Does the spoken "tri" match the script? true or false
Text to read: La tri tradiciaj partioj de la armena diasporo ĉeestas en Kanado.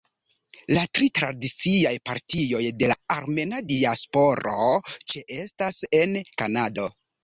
true